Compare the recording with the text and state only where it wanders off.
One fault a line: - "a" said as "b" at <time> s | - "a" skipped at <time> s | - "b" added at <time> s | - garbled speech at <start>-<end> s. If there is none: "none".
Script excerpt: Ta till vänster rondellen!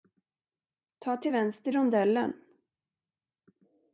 none